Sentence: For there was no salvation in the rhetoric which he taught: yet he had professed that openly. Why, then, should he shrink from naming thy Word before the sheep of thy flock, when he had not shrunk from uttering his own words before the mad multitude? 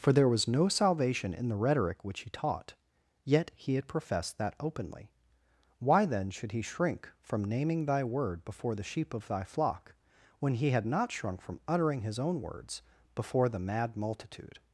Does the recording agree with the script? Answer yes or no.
yes